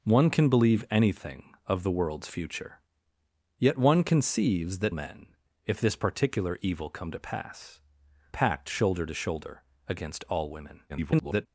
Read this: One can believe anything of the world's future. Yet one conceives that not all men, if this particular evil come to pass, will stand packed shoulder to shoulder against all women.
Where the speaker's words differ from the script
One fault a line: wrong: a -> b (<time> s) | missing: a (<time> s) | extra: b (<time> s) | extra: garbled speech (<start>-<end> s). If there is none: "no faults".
missing: not all (5.0 s)
missing: will stand (7.8 s)
extra: garbled speech (10.9-11.5 s)